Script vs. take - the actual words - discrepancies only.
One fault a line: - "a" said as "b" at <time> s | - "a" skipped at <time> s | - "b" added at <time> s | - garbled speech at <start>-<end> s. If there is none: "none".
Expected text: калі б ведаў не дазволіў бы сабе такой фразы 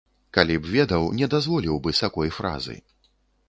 - "сабе" skipped at 2.0 s